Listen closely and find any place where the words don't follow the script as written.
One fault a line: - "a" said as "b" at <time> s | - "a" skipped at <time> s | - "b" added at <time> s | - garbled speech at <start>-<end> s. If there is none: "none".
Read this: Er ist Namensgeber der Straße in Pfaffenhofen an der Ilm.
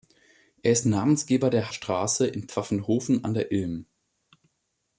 none